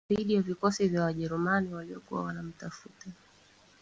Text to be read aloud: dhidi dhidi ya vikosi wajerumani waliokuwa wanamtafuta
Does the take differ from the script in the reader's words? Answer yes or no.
yes